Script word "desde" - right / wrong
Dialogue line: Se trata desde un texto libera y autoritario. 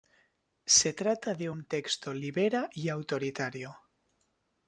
wrong